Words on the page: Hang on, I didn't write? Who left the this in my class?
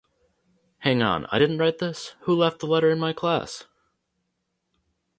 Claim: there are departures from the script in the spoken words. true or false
true